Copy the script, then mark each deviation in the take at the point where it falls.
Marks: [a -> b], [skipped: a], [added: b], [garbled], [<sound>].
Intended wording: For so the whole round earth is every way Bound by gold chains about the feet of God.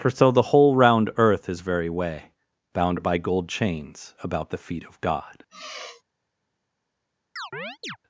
For so the whole round earth is [every -> very] way Bound by gold chains about the feet of God. [sigh] [chirp]